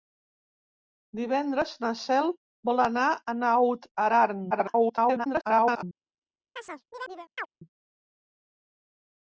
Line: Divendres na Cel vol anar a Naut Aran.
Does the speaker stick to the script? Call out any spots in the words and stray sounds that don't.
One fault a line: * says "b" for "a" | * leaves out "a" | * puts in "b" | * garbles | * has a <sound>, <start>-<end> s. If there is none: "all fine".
* garbles
* has a chirp, 6.6-7.5 s